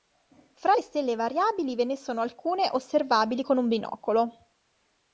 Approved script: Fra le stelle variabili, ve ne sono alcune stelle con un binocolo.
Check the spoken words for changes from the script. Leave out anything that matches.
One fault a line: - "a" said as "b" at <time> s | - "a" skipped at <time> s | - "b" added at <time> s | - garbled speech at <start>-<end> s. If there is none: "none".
- "stelle" said as "osservabili" at 2.7 s